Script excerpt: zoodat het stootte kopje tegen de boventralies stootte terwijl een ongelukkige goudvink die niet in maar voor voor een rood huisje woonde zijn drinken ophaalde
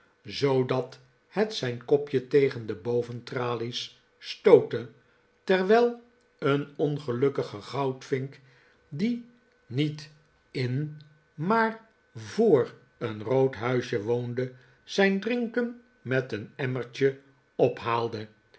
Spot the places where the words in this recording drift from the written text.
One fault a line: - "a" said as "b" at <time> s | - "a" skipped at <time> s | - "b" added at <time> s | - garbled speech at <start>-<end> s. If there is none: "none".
- "stootte" said as "zijn" at 1.5 s
- "voor" skipped at 12.7 s
- "met een emmertje" added at 16.0 s